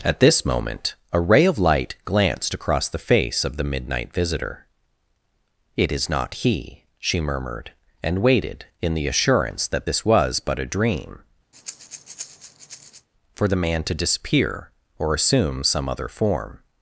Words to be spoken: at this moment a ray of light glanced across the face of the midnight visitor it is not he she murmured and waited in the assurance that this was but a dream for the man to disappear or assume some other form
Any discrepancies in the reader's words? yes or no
no